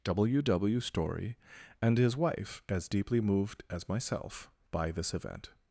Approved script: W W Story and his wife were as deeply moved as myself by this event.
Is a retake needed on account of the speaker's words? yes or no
yes